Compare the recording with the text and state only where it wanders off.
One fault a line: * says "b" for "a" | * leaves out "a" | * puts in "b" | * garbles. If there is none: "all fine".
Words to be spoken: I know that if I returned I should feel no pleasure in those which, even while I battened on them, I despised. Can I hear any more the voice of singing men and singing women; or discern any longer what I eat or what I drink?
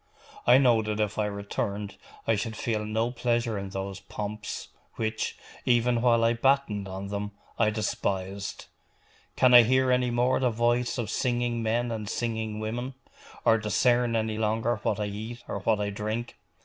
* puts in "pomps"